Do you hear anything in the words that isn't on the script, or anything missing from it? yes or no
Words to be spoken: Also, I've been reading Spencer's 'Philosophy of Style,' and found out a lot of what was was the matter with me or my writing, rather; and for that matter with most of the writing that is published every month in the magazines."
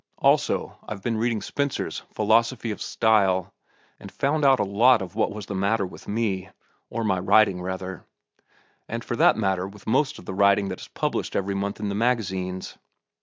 yes